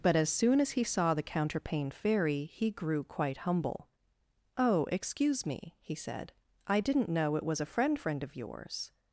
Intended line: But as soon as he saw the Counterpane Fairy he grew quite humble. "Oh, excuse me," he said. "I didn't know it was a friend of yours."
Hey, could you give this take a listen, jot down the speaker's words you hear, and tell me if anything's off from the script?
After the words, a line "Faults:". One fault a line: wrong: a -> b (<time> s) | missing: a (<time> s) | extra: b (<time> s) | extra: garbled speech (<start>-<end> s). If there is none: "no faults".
But as soon as he saw the Counterpane Fairy he grew quite humble. "Oh, excuse me," he said. "I didn't know it was a friend friend of yours."
Faults:
extra: friend (8.0 s)